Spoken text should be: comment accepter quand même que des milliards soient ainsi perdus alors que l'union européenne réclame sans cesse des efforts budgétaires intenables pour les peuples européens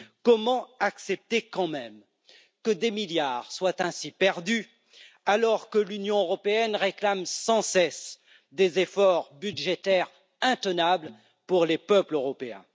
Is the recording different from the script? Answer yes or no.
no